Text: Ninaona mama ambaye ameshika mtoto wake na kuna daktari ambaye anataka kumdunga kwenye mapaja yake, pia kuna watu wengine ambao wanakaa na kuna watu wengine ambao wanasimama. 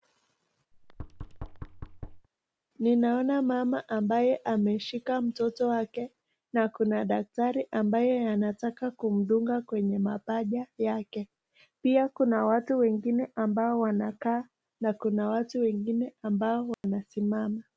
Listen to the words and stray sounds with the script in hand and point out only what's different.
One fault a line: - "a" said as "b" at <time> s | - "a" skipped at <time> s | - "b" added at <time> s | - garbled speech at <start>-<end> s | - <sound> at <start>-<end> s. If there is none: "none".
- thud at 0.7-2.3 s
- dropout at 16.7-16.8 s